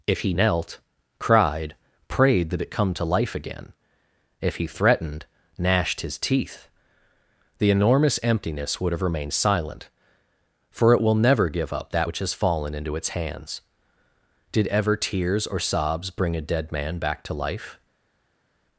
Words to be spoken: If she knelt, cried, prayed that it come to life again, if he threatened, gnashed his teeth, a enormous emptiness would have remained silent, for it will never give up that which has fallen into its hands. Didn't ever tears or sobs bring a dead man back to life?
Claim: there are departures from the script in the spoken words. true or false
true